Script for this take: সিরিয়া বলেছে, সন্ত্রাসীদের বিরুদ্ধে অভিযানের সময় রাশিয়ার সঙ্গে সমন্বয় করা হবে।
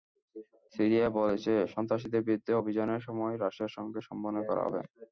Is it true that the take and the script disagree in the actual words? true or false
false